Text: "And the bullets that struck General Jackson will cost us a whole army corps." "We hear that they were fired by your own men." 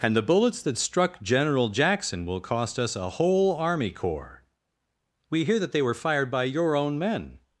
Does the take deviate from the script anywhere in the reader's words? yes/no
no